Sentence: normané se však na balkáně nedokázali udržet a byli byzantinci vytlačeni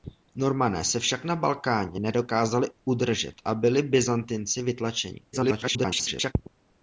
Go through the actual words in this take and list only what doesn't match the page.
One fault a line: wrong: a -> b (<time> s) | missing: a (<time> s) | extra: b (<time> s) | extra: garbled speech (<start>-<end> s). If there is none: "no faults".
extra: garbled speech (5.3-6.3 s)